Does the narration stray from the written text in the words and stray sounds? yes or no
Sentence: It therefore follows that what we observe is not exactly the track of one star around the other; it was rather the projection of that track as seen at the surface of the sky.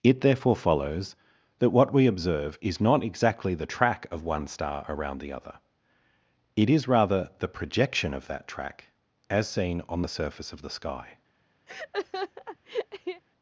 yes